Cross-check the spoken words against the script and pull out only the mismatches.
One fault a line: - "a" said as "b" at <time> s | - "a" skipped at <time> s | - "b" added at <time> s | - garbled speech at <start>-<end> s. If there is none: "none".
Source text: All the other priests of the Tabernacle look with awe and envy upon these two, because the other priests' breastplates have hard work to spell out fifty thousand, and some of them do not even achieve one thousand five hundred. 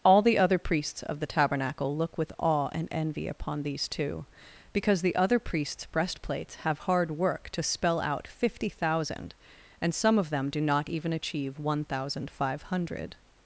none